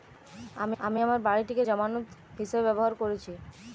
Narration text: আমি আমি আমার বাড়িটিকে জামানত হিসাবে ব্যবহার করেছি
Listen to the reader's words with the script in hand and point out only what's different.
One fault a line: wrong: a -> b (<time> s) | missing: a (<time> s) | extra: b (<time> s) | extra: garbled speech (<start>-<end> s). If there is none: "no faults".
no faults